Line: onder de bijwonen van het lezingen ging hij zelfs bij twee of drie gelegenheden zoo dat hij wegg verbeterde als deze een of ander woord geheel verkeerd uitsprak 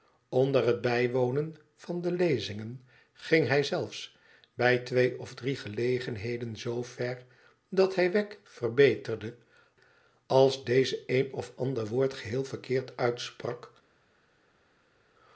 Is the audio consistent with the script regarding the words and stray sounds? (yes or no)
no